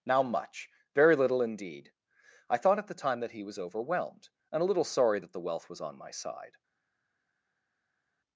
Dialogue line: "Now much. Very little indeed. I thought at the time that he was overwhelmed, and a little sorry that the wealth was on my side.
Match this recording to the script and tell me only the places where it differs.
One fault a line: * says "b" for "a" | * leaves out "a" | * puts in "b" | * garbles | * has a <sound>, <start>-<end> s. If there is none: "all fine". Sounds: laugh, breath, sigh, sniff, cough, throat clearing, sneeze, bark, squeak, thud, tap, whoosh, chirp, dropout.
all fine